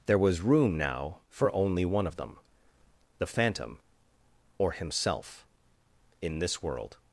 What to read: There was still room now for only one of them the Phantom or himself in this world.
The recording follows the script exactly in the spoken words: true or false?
false